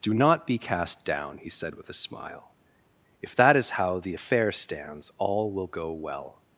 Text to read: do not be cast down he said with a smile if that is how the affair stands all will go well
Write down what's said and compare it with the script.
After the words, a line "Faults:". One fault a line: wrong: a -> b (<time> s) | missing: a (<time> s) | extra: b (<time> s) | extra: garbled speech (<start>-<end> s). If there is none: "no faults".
do not be cast down he said with a smile if that is how the affair stands all will go well
Faults:
no faults